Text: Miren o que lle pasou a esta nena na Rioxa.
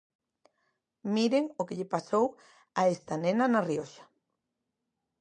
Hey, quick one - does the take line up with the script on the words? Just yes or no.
yes